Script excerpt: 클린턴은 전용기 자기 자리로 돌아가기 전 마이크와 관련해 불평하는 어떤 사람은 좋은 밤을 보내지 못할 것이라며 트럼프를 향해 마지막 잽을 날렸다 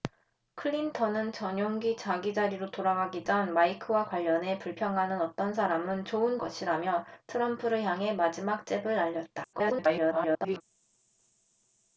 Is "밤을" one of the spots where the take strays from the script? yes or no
yes